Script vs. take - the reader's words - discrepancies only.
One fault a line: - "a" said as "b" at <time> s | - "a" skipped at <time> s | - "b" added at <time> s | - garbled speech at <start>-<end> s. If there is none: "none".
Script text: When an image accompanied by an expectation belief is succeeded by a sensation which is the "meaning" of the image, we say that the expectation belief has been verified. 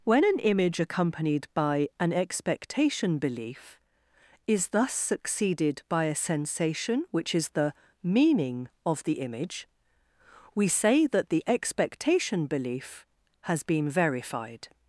- "thus" added at 4.7 s